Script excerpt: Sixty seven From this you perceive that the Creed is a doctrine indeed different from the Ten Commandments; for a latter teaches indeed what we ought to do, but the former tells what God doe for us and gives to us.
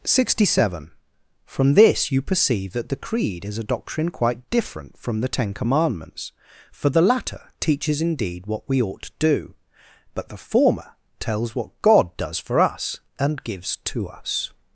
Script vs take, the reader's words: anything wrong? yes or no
yes